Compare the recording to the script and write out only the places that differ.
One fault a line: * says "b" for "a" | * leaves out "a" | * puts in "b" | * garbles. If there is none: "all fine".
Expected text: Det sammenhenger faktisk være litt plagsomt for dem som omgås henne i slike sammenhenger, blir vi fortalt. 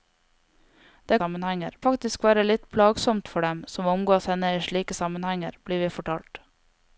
all fine